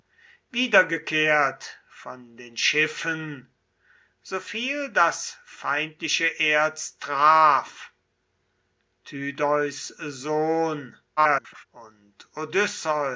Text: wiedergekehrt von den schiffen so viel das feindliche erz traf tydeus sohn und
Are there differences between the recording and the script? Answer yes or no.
yes